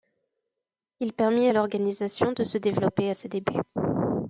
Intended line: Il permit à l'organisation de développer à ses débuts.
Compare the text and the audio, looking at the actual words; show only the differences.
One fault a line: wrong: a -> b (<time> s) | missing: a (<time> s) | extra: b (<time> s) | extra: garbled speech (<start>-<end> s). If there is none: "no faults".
extra: se (2.4 s)